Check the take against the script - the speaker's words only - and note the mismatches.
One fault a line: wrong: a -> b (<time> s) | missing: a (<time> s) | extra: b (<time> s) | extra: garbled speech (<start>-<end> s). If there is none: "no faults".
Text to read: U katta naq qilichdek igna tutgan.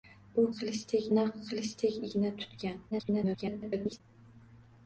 wrong: katta -> qilichdek (0.6 s)
extra: garbled speech (2.9-4.0 s)